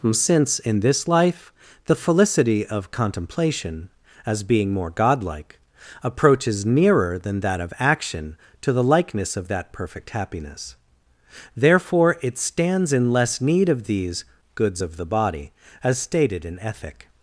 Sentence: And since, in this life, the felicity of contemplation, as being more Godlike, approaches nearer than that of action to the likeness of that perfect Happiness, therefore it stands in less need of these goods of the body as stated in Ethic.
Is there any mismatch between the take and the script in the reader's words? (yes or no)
yes